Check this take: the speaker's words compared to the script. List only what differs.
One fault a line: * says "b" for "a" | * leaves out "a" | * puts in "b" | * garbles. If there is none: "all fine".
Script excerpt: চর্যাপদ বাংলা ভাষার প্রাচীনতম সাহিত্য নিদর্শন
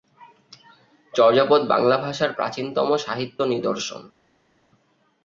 all fine